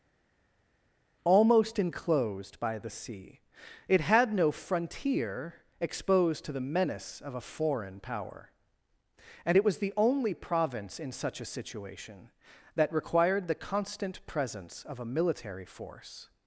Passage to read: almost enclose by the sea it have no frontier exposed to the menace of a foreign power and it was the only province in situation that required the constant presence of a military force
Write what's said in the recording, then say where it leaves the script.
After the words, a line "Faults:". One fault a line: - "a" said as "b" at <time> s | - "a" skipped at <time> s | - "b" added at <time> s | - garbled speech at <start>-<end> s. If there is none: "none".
almost enclosed by the sea it had no frontier exposed to the menace of a foreign power and it was the only province in such a situation that required the constant presence of a military force
Faults:
- "enclose" said as "enclosed" at 1.8 s
- "have" said as "had" at 4.0 s
- "such a" added at 11.1 s